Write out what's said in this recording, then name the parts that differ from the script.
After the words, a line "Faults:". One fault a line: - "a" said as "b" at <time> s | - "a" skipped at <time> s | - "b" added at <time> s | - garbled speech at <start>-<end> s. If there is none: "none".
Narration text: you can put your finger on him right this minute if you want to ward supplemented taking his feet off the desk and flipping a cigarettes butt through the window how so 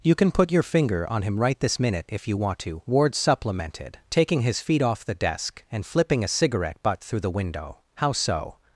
you can put your finger on him right this minute if you want to ward supplemented taking his feet off the desk and flipping a cigarette butt through the window how so
Faults:
- "cigarettes" said as "cigarette" at 6.3 s